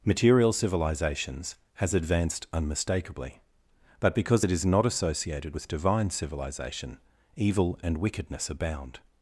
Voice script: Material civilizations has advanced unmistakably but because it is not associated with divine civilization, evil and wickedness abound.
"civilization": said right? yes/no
yes